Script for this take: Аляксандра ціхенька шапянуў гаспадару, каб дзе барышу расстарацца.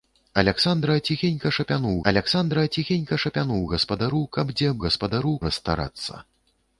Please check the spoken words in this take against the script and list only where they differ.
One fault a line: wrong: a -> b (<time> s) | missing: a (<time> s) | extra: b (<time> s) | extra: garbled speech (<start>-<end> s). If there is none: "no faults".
extra: аляксандра ціхенька шапянуў (2.1 s)
wrong: барышу -> гаспадару (4.9 s)